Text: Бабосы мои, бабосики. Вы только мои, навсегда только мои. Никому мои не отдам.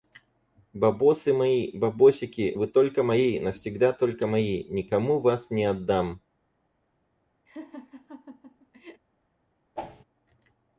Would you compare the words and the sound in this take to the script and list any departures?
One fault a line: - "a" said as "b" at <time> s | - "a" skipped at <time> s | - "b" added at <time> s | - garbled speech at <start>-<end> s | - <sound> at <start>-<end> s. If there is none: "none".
- "мои" said as "вас" at 5.2 s
- laugh at 7.5-9.0 s
- whoosh at 9.8-10.0 s